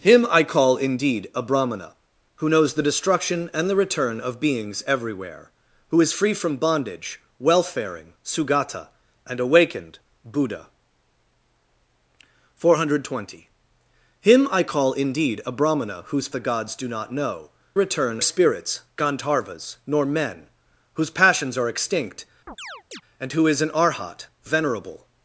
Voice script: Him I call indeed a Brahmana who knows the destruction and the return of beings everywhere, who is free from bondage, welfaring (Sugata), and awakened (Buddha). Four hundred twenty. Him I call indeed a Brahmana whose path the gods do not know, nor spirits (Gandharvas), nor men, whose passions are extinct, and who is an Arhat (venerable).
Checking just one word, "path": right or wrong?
wrong